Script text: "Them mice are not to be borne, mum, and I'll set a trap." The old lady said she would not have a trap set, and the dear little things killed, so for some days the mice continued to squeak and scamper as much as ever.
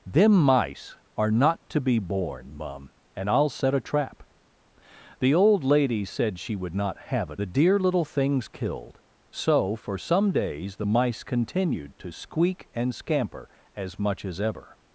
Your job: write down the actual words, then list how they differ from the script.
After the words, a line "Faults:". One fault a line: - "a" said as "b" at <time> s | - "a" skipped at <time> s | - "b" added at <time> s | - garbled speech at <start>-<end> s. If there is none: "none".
"Them mice are not to be borne, mum, and I'll set a trap." The old lady said she would not have a the dear little things killed, so for some days the mice continued to squeak and scamper as much as ever.
Faults:
- "trap set and" skipped at 7.4 s